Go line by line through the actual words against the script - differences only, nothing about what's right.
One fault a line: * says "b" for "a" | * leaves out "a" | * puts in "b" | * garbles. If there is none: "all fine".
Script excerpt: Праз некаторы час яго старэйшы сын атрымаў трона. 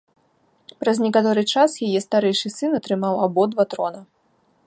* says "яе" for "яго"
* puts in "абодва"